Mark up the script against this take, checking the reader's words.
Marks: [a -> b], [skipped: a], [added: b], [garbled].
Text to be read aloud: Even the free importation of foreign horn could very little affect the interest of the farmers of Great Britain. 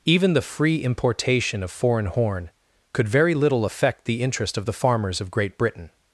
Even the free importation of foreign horn could very little affect the interest of the farmers of Great Britain.